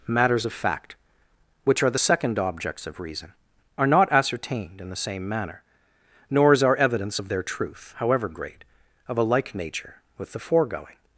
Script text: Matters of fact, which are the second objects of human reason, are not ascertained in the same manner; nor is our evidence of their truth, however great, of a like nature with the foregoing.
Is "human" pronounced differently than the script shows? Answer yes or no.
yes